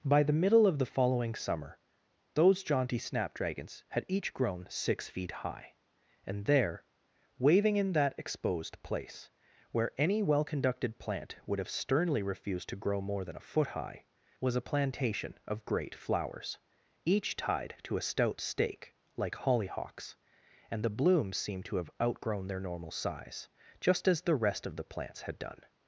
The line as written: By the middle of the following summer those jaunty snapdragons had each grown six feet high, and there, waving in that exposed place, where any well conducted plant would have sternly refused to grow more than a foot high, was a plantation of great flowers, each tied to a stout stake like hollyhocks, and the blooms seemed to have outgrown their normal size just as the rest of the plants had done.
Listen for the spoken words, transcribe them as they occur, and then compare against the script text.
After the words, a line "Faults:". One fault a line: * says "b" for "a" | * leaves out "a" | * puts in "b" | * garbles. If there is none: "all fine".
By the middle of the following summer those jaunty snapdragons had each grown six feet high, and there, waving in that exposed place, where any well conducted plant would have sternly refused to grow more than a foot high, was a plantation of great flowers, each tied to a stout stake like hollyhocks, and the blooms seemed to have outgrown their normal size just as the rest of the plants had done.
Faults:
all fine